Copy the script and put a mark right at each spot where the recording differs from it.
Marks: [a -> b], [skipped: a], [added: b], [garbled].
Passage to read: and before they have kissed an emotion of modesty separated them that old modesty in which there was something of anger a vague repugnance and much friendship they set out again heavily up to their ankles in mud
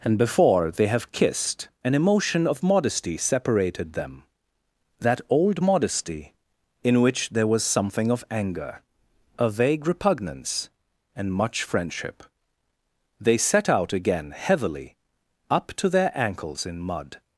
and before they have kissed an emotion of modesty separated them that old modesty in which there was something of anger a vague repugnance and much friendship they set out again heavily up to their ankles in mud